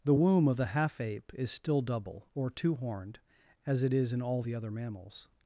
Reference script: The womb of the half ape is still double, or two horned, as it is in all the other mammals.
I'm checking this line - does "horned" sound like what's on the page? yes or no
yes